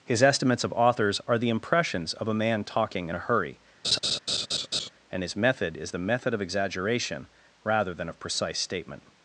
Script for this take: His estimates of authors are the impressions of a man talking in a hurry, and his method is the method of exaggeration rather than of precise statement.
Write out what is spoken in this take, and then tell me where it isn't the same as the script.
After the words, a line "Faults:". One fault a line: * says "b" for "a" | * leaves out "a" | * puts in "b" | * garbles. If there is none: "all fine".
His estimates of authors are the impressions of a man talking in a hurry, and his method is the method of exaggeration rather than of precise statement.
Faults:
all fine